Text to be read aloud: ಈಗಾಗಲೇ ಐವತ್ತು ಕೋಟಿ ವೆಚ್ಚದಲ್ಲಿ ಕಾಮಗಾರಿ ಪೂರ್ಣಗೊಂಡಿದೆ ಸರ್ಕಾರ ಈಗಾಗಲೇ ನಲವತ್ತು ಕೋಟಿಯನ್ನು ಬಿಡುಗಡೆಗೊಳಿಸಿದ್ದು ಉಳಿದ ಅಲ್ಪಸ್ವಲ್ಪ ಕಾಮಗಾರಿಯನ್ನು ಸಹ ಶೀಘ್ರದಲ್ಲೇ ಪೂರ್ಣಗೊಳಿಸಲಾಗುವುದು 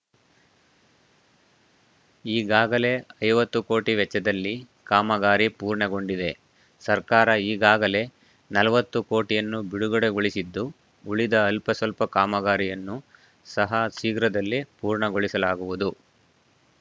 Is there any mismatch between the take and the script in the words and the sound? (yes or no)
no